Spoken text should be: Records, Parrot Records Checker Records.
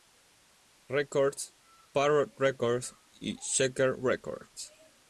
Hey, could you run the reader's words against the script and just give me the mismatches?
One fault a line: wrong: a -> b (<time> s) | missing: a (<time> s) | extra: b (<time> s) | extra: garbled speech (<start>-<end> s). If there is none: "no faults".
extra: y (3.2 s)